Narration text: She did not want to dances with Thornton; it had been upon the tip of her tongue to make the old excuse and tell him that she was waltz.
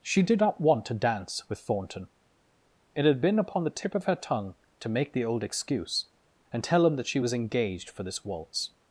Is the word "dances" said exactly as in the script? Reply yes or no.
no